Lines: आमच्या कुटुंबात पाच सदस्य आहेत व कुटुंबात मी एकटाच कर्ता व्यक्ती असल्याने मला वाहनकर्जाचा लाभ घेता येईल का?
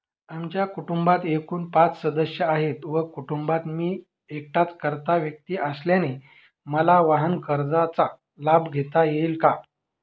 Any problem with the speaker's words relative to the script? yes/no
yes